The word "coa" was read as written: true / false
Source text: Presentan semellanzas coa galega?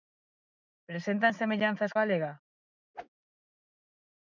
false